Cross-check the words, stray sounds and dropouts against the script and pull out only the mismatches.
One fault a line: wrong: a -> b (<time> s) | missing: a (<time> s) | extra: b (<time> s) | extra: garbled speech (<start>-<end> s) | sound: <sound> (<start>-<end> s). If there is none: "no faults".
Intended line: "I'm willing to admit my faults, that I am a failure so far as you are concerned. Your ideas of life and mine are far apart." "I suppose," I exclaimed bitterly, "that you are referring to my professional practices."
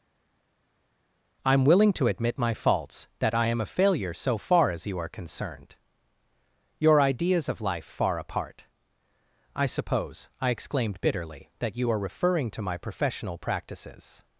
missing: and mine are (7.9 s)